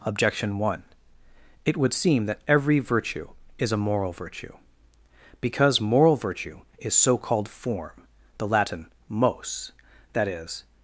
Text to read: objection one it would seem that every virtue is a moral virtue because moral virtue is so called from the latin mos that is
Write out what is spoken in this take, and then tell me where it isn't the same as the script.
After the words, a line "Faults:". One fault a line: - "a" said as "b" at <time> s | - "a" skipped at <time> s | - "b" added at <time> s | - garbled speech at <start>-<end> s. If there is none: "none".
objection one it would seem that every virtue is a moral virtue because moral virtue is so called form the latin mos that is
Faults:
- "from" said as "form" at 7.5 s